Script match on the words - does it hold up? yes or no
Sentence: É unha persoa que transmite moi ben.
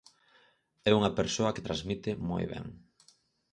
yes